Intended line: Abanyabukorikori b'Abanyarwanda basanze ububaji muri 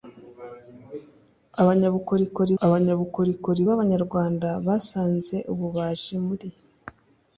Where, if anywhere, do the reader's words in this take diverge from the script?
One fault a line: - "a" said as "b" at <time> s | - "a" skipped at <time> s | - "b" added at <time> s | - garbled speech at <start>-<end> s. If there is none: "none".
- "abanyabukorikori" added at 2.6 s